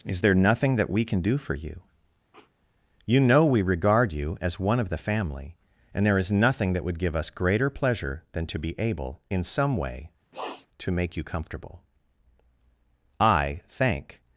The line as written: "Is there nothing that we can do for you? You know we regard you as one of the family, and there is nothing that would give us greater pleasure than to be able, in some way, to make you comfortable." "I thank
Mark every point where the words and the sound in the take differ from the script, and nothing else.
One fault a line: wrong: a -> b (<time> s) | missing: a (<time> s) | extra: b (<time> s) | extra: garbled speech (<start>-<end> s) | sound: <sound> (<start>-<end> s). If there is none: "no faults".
sound: sniff (2.3-2.5 s)
sound: sniff (10.3-10.7 s)